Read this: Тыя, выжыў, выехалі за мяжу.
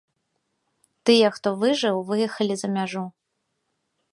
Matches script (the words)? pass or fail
fail